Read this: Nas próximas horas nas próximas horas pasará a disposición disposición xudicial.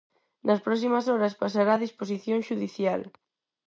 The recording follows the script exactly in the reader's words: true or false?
false